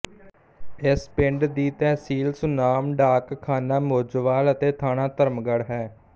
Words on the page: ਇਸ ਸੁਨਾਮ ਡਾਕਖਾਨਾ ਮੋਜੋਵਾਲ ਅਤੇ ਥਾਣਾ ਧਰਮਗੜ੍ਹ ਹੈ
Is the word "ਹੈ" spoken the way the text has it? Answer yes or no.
yes